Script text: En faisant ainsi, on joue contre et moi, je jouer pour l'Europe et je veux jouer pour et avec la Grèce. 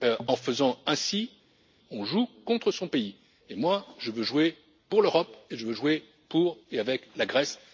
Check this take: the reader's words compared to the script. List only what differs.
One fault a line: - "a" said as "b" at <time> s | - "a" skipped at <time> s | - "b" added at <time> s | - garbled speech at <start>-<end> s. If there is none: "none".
- "son pays" added at 2.7 s
- "veux" added at 4.1 s